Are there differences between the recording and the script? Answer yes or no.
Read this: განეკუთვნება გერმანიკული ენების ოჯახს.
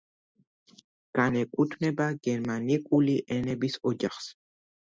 no